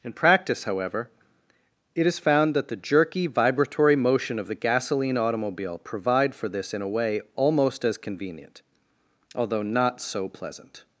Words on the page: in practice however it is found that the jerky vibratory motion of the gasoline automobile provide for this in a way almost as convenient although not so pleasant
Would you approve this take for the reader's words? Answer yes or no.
yes